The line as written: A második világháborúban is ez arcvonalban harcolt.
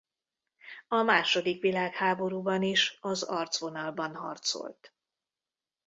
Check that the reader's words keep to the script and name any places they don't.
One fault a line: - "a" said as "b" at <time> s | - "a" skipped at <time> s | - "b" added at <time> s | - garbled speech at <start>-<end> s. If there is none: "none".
- "ez" said as "az" at 3.0 s